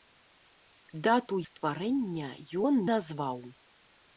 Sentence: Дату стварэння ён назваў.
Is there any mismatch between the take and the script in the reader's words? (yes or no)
no